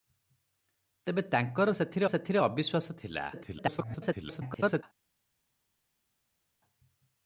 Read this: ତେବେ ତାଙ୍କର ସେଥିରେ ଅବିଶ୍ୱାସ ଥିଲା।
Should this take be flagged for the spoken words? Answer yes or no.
yes